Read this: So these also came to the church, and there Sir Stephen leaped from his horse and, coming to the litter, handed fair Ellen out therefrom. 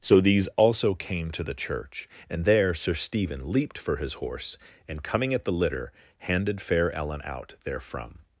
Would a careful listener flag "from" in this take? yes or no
yes